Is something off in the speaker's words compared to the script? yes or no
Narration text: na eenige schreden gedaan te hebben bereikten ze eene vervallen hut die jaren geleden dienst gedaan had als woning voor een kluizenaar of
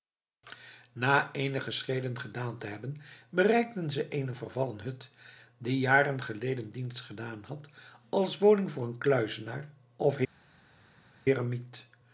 no